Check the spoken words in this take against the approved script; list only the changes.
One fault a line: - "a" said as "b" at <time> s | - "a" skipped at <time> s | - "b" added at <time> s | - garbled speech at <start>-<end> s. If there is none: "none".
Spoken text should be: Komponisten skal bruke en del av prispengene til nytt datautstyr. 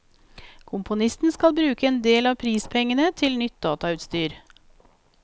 none